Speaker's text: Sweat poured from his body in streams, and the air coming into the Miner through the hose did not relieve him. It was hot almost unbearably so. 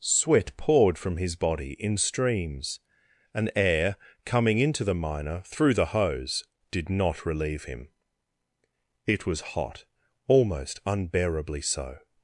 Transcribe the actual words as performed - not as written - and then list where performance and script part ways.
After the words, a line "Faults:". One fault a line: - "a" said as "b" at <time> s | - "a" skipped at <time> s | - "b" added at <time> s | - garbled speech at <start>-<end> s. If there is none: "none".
Sweat poured from his body in streams, and air coming into the Miner through the hose did not relieve him. It was hot almost unbearably so.
Faults:
- "the" skipped at 3.5 s